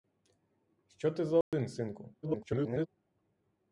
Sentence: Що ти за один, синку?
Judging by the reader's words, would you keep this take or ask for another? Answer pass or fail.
fail